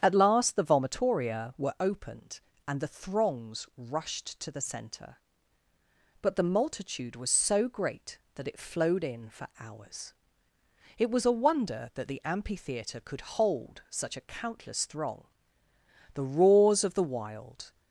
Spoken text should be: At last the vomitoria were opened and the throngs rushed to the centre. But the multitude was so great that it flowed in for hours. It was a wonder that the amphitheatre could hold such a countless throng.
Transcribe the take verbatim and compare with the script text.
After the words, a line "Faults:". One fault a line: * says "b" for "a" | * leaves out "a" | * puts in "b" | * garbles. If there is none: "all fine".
At last the vomitoria were opened and the throngs rushed to the centre. But the multitude was so great that it flowed in for hours. It was a wonder that the amphitheatre could hold such a countless throng. The roars of the wild
Faults:
* puts in "The roars of the wild"